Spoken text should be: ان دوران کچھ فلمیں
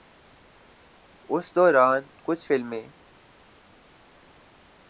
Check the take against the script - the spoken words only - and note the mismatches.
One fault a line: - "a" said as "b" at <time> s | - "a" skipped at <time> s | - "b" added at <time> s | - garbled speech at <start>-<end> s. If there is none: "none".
- "ان" said as "اس" at 1.3 s